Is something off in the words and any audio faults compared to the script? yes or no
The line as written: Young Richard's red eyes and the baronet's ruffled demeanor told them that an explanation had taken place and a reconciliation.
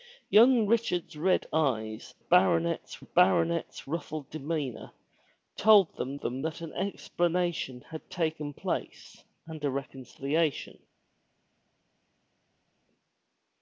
yes